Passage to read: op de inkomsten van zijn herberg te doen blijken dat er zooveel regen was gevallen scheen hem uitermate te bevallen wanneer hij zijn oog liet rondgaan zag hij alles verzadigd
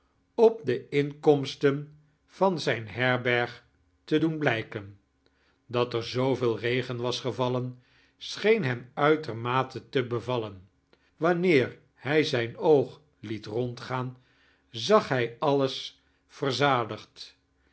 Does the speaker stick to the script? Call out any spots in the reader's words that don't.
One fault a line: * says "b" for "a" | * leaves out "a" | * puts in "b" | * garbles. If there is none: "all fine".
all fine